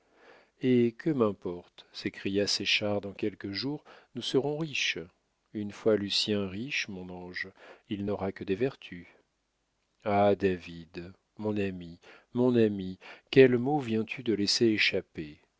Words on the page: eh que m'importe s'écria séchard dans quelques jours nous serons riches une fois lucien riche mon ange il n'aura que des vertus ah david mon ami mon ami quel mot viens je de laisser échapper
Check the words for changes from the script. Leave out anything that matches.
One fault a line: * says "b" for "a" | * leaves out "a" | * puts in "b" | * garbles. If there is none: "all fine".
* says "tu" for "je"